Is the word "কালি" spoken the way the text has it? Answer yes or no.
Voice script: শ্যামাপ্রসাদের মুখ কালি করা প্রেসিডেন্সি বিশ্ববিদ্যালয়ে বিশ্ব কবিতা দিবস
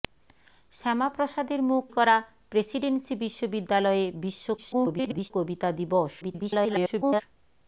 no